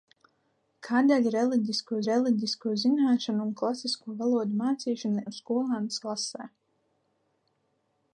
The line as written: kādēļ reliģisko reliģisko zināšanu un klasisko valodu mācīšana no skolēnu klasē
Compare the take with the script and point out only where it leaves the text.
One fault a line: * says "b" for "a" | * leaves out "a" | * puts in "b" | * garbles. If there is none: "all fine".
all fine